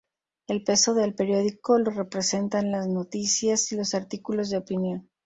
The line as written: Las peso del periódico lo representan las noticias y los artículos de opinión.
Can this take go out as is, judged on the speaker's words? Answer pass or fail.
fail